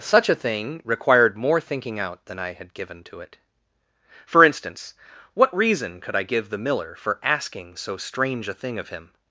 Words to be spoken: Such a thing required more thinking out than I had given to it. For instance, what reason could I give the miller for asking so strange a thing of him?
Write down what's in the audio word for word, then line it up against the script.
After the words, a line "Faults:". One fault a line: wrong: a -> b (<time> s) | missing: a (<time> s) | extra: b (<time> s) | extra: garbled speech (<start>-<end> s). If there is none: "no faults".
Such a thing required more thinking out than I had given to it. For instance, what reason could I give the miller for asking so strange a thing of him?
Faults:
no faults